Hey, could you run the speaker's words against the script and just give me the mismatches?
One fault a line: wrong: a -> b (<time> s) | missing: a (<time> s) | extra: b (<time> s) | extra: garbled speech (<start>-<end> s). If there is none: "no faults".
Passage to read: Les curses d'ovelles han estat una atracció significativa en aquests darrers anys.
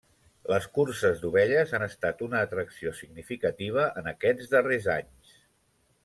no faults